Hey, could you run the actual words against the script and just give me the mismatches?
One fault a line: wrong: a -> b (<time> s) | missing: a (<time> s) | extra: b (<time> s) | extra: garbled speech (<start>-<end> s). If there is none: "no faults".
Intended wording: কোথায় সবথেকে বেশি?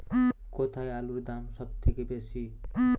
extra: আলুর দাম (0.9 s)